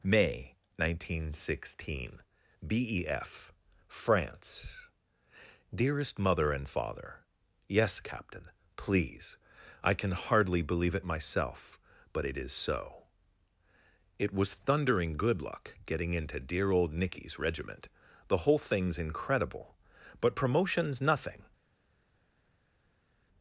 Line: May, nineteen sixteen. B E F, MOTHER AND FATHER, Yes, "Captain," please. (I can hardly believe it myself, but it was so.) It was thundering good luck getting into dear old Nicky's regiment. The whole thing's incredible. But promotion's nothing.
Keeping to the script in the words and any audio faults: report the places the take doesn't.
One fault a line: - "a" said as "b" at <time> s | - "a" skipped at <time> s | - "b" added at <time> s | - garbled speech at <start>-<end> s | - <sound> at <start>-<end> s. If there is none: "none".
- "FRANCE DEAREST" added at 3.9 s
- "was" said as "is" at 12.4 s